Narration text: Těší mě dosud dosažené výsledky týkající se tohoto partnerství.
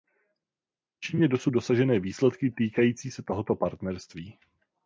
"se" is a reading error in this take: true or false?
false